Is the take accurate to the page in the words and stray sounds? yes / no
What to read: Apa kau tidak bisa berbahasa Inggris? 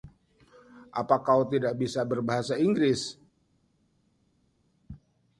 yes